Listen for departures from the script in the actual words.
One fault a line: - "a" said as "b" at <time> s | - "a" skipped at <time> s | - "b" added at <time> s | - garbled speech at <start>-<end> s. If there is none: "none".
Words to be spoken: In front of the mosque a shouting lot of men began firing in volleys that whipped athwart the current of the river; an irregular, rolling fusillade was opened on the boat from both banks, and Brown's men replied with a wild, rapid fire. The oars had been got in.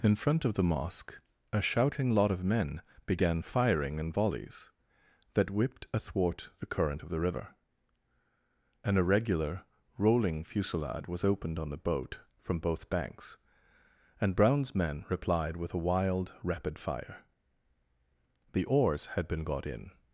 none